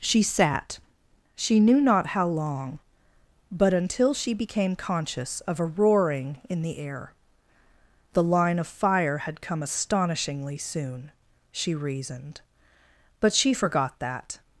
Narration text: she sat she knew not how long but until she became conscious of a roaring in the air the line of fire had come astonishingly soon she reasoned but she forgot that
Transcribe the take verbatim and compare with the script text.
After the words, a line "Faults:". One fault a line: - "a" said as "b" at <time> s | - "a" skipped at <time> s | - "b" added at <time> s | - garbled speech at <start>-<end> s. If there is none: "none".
she sat she knew not how long but until she became conscious of a roaring in the air the line of fire had come astonishingly soon she reasoned but she forgot that
Faults:
none